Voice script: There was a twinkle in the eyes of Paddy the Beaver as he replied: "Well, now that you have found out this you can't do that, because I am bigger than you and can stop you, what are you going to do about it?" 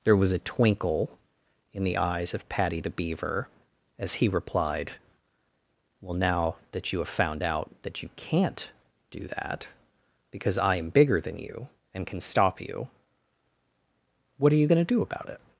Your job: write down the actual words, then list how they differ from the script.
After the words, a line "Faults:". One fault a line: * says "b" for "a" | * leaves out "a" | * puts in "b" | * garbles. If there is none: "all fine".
There was a twinkle in the eyes of Paddy the Beaver as he replied: "Well, now that you have found out that you can't do that, because I am bigger than you and can stop you, what are you going to do about it?"
Faults:
* says "that" for "this"